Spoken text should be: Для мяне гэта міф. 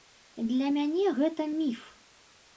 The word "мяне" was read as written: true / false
true